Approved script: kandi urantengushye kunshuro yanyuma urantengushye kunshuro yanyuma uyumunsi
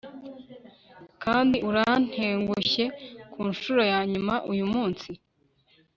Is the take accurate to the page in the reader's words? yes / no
no